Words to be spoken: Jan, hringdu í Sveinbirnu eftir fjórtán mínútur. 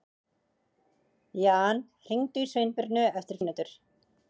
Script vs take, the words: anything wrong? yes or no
yes